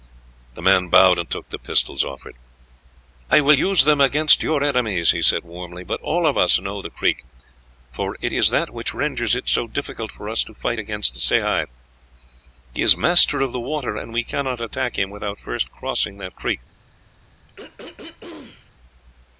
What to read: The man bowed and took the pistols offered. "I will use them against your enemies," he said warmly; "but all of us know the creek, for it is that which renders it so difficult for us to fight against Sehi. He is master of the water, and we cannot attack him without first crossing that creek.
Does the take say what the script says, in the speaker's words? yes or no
yes